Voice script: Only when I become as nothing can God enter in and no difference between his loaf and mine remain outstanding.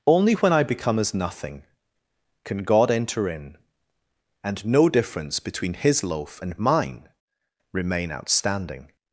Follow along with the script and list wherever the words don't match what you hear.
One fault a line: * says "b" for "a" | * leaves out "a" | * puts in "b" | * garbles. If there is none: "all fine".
all fine